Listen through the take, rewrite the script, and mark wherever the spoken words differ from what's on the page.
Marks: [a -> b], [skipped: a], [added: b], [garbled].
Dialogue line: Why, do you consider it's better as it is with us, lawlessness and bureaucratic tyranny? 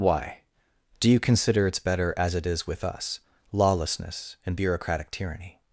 Why, do you consider it's better as it is with us, lawlessness and bureaucratic tyranny?